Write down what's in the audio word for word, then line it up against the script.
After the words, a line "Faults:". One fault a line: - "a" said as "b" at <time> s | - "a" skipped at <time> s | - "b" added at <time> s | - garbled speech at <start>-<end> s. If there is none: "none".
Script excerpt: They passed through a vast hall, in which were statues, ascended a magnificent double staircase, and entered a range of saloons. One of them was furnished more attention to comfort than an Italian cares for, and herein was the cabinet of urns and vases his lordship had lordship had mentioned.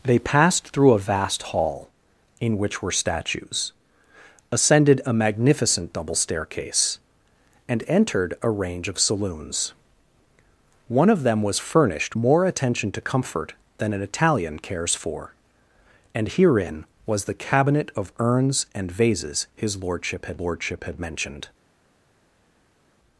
They passed through a vast hall, in which were statues, ascended a magnificent double staircase, and entered a range of saloons. One of them was furnished more attention to comfort than an Italian cares for, and herein was the cabinet of urns and vases his lordship had lordship had mentioned.
Faults:
none